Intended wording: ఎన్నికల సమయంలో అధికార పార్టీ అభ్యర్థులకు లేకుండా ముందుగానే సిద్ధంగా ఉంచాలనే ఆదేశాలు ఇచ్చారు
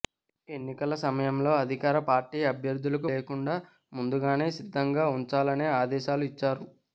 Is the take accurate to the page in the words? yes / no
yes